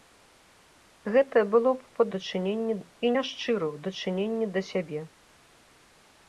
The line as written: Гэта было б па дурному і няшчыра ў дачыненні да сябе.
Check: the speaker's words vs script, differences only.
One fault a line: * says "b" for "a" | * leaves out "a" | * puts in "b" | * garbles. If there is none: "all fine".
* says "дачыненні" for "дурному"